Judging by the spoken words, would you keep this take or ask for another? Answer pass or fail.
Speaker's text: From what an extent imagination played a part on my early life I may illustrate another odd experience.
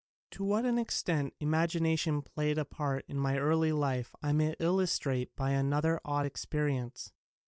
fail